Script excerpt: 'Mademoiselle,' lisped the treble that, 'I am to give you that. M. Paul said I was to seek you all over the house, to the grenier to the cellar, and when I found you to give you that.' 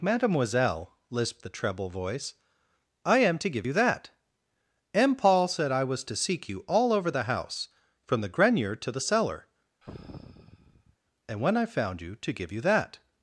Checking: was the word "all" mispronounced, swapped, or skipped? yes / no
no